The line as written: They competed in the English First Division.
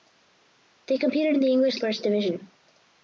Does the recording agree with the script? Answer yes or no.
yes